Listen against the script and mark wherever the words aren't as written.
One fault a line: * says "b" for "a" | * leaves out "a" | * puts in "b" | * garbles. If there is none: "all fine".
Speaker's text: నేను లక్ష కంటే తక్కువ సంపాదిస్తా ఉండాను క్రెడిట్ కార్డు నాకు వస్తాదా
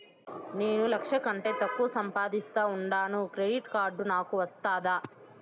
all fine